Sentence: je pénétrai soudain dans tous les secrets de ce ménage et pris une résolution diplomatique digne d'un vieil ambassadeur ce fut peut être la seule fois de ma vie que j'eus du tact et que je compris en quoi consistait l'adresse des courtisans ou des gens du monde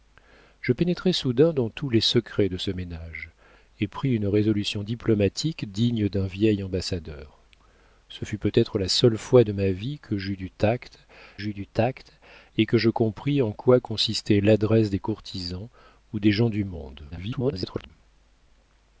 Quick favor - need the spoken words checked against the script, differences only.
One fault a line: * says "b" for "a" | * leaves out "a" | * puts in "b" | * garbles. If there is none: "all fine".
* puts in "j'eus du tact"
* garbles